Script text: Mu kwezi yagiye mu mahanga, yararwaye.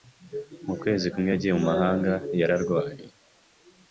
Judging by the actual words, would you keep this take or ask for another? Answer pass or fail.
fail